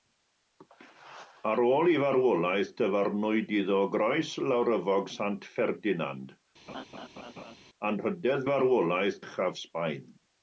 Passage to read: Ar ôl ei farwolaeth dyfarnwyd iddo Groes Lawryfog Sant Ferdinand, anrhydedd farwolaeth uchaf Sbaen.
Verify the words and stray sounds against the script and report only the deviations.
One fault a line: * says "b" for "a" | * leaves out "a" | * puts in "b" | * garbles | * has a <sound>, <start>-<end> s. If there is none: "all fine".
* has a laugh, 6.7-7.6 s